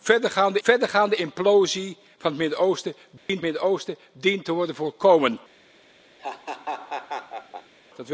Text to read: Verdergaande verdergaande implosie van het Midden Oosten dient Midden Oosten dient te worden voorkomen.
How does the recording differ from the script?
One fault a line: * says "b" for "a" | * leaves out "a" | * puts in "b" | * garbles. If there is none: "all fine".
all fine